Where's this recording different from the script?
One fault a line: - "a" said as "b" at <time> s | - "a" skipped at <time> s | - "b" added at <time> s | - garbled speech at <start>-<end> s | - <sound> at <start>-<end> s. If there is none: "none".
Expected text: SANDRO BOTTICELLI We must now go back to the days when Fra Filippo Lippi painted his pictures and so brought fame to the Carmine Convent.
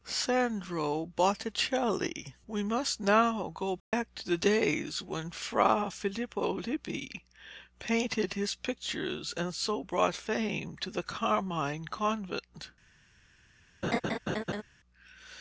- dropout at 3.8-3.9 s
- laugh at 13.8-14.6 s